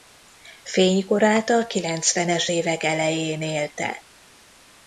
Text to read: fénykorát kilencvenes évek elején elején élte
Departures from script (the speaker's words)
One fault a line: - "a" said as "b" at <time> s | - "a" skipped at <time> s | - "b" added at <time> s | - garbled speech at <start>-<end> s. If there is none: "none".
- "a" added at 1.5 s
- "elején" skipped at 3.4 s